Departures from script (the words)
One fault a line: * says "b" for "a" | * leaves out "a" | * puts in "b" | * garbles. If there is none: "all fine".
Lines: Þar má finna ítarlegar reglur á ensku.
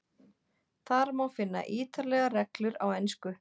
all fine